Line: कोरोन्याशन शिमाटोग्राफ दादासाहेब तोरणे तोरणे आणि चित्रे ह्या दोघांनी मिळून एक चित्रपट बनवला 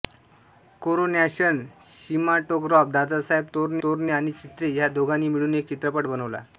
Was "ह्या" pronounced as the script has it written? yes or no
yes